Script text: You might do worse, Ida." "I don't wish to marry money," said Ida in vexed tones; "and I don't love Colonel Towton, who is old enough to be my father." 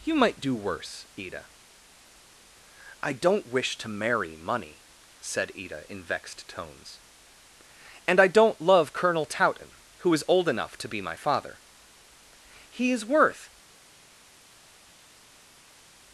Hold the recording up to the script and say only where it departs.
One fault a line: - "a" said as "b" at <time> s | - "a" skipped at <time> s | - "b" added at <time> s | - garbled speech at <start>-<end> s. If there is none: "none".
- "He is worth" added at 12.7 s